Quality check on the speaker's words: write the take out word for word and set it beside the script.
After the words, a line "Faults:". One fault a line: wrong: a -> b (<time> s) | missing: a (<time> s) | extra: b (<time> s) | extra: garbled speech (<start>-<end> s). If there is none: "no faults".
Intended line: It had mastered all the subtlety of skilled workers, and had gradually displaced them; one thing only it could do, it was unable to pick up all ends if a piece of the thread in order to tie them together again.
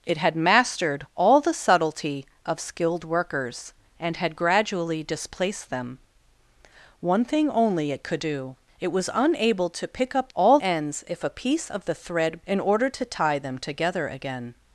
It had mastered all the subtlety of skilled workers, and had gradually displaced them; one thing only it could do, it was unable to pick up all ends if a piece of the thread in order to tie them together again.
Faults:
no faults